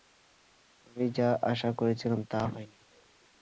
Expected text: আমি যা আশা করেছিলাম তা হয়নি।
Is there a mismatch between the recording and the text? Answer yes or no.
no